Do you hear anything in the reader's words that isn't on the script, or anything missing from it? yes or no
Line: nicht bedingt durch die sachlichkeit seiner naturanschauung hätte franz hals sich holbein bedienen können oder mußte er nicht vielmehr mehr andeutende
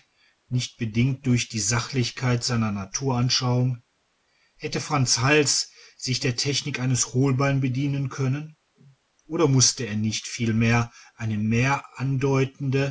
yes